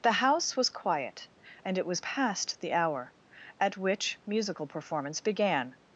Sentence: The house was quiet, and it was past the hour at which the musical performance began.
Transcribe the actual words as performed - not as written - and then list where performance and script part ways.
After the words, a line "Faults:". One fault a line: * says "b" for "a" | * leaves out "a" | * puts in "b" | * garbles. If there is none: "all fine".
The house was quiet, and it was past the hour at which musical performance began.
Faults:
* leaves out "the"